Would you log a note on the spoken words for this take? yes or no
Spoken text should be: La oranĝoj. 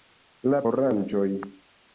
no